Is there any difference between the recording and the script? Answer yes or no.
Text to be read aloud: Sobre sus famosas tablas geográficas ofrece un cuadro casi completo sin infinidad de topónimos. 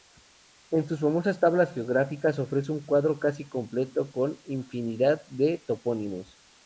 yes